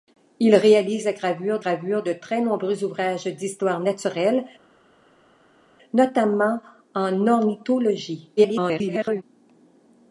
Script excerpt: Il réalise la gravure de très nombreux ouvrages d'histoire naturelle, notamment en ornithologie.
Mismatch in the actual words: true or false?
true